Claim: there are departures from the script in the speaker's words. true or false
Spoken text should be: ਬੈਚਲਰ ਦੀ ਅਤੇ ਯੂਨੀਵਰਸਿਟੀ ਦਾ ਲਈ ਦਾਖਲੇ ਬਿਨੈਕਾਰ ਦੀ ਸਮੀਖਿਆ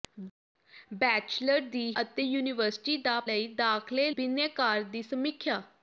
false